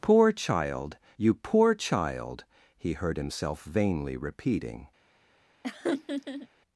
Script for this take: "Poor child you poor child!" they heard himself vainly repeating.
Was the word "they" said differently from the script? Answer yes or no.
yes